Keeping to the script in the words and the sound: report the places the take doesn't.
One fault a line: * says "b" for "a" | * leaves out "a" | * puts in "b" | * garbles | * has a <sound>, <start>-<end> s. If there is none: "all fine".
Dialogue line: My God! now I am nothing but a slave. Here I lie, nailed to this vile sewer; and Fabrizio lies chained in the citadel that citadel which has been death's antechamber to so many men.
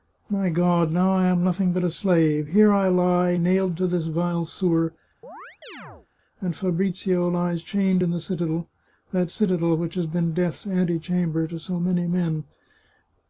* has a chirp, 5.2-6.1 s